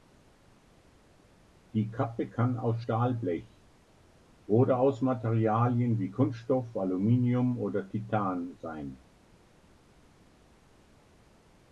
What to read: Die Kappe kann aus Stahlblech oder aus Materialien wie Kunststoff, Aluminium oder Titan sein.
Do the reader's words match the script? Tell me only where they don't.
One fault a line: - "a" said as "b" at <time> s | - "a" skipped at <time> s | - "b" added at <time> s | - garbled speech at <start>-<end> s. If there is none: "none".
none